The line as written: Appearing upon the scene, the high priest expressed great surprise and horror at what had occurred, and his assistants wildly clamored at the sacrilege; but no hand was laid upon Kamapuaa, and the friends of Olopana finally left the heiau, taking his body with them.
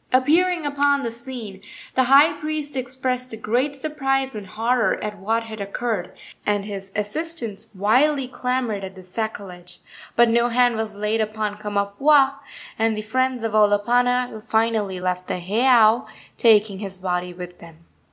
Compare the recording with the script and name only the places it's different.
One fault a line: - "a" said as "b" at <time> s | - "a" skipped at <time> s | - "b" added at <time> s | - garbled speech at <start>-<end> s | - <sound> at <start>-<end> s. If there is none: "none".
none